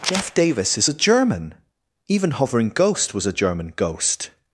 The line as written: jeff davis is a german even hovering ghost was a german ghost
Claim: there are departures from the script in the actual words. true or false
false